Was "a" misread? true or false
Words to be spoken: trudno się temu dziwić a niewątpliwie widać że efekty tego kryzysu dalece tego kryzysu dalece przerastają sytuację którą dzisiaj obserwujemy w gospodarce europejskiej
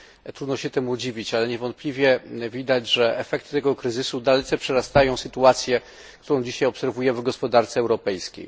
true